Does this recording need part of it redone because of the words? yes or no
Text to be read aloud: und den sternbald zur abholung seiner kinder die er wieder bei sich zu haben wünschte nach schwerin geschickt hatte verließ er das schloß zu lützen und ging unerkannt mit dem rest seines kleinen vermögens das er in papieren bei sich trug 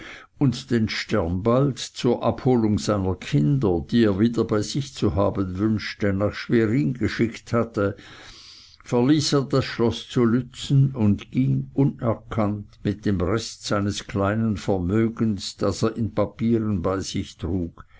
no